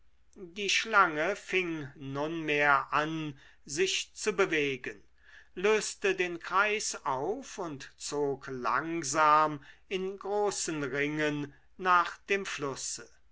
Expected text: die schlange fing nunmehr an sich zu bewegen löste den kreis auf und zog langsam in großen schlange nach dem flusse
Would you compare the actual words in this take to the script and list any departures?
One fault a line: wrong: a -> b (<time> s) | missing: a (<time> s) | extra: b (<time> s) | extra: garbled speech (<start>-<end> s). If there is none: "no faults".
wrong: schlange -> ringen (10.8 s)